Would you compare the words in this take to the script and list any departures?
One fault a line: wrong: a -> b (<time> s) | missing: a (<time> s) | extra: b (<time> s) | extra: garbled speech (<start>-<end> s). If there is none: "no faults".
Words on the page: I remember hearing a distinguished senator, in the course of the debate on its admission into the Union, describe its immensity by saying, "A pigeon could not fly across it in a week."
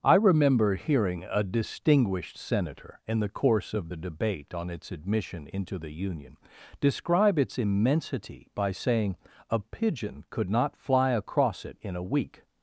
no faults